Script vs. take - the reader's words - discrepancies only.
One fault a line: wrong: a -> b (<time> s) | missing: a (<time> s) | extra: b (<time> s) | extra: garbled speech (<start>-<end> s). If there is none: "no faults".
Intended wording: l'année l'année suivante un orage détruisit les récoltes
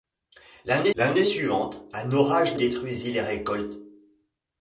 no faults